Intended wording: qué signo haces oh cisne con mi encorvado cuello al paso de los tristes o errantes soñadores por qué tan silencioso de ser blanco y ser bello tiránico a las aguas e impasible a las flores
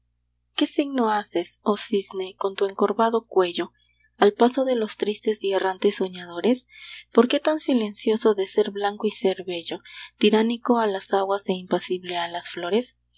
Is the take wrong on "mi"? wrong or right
wrong